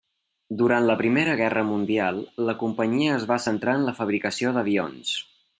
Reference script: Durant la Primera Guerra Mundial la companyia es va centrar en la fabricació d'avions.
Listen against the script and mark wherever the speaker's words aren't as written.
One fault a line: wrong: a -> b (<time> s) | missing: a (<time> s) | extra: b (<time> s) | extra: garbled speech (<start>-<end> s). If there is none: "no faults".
no faults